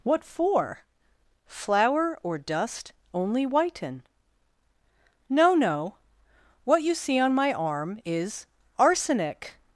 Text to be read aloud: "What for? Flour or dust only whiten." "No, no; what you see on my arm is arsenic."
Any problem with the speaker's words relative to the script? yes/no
no